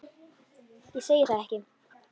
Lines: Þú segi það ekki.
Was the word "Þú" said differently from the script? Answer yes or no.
yes